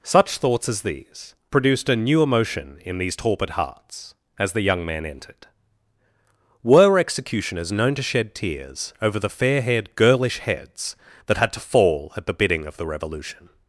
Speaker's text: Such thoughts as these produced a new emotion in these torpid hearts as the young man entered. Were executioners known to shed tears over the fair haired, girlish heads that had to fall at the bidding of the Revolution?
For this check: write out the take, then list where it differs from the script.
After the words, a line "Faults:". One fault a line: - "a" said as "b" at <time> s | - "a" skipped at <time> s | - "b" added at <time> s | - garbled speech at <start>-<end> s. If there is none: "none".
Such thoughts as these produced a new emotion in these torpid hearts as the young man entered. Were executioners known to shed tears over the fair haired, girlish heads that had to fall at the bidding of the Revolution?
Faults:
none